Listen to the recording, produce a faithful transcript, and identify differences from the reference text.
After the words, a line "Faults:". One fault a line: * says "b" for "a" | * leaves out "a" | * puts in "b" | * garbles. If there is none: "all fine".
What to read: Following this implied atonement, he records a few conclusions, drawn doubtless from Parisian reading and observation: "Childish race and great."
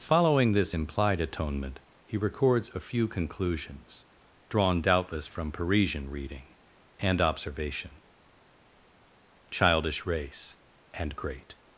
Following this implied atonement, he records a few conclusions, drawn doubtless from Parisian reading and observation: "Childish race and great."
Faults:
all fine